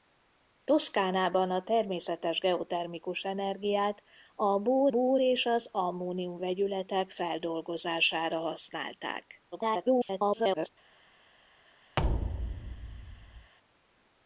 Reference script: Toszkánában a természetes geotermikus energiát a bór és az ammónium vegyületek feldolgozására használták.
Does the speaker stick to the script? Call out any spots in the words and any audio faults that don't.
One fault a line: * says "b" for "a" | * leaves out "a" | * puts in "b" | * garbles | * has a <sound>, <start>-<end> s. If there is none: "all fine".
* puts in "bór"
* garbles
* has a thud, 12.0-13.5 s